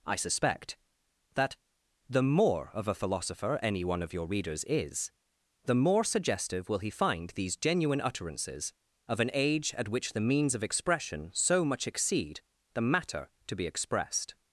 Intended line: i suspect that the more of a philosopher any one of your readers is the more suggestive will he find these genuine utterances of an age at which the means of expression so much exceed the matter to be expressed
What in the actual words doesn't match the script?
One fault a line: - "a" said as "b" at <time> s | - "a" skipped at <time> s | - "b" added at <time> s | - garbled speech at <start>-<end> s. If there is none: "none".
none